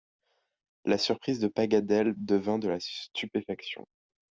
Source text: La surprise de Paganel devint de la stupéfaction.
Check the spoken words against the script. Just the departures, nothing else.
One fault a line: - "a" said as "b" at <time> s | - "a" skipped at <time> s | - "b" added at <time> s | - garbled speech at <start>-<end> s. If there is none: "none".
none